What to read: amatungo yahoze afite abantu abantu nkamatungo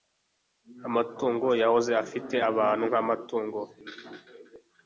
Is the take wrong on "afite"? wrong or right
right